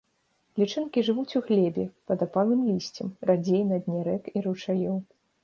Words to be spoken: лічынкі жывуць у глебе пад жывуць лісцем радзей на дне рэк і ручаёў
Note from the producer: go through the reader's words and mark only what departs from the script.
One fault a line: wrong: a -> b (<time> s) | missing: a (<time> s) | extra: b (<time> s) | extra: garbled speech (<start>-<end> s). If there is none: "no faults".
wrong: жывуць -> апалым (2.3 s)